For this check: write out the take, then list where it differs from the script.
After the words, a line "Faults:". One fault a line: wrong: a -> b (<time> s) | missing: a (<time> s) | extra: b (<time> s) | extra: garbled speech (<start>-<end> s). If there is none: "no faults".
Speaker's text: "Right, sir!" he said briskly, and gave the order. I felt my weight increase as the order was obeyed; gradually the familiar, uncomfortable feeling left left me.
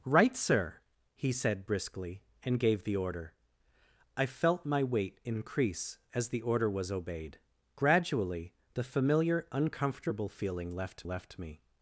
"Right, sir!" he said briskly, and gave the order. I felt my weight increase as the order was obeyed; gradually the familiar, uncomfortable feeling left left me.
Faults:
no faults